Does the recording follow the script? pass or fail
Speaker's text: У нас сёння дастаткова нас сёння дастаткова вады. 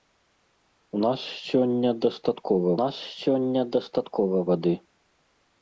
pass